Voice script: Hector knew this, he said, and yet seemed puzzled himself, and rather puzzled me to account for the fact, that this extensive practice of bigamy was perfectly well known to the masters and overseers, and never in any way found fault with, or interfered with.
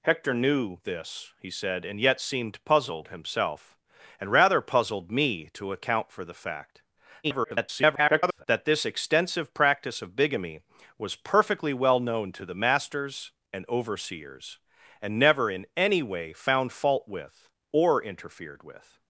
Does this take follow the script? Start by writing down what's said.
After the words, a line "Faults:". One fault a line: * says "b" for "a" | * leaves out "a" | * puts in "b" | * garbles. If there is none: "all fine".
Hector knew this, he said, and yet seemed puzzled himself, and rather puzzled me to account for the fact, [garbled] that this extensive practice of bigamy was perfectly well known to the masters and overseers, and never in any way found fault with, or interfered with.
Faults:
* garbles